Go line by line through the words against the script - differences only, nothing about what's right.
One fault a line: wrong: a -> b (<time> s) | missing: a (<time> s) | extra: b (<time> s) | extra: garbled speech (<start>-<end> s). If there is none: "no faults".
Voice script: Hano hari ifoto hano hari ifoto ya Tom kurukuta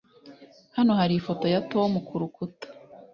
missing: hano hari ifoto (1.4 s)